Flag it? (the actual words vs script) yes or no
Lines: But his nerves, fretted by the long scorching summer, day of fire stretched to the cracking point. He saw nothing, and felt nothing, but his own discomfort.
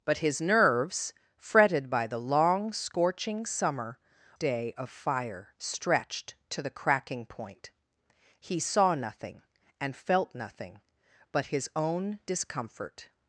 no